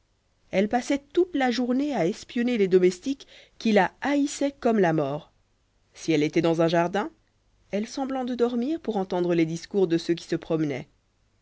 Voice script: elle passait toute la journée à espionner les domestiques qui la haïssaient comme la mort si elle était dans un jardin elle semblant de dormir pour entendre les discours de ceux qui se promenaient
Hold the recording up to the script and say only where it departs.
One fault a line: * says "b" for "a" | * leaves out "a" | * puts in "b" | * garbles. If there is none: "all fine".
all fine